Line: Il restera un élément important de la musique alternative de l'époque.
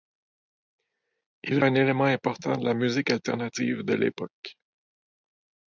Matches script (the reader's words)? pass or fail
fail